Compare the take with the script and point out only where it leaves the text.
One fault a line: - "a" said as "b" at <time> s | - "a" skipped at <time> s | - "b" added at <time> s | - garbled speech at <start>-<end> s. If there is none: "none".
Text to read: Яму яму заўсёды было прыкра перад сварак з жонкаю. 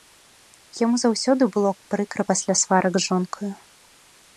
- "яму" skipped at 0.9 s
- "перад" said as "пасля" at 2.3 s